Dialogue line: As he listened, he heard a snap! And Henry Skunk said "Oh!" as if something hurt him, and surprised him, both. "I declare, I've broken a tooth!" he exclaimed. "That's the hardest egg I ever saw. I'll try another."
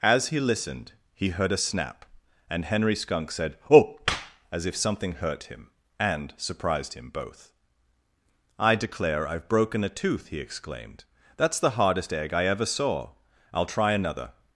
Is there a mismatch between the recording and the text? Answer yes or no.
no